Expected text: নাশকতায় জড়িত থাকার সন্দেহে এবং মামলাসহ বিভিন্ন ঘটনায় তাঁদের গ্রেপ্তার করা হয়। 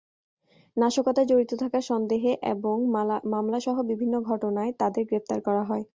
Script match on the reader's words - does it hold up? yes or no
yes